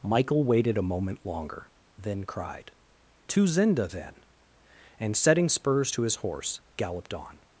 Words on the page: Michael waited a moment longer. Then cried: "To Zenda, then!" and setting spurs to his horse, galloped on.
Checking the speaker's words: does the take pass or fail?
pass